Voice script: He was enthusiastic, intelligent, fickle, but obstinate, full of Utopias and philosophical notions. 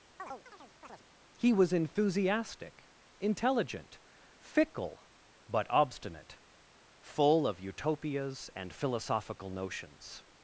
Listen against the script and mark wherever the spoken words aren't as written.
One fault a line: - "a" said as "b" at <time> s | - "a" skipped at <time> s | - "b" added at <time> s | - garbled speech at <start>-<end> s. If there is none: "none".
none